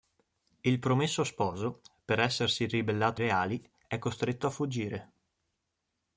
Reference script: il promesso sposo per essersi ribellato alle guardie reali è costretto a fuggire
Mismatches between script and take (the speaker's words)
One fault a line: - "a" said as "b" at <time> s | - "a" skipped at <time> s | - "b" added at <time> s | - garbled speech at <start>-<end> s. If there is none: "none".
- "alle guardie" skipped at 3.2 s